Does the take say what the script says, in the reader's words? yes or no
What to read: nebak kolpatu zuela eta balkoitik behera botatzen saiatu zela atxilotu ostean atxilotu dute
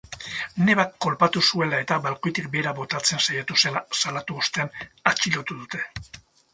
no